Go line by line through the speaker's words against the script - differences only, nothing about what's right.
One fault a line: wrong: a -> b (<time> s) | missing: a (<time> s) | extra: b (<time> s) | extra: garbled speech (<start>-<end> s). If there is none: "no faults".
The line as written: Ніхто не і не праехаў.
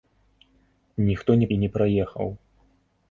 no faults